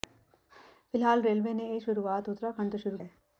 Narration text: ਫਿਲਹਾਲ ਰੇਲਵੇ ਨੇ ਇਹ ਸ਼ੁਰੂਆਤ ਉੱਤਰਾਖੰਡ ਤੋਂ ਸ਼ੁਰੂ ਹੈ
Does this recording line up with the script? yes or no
yes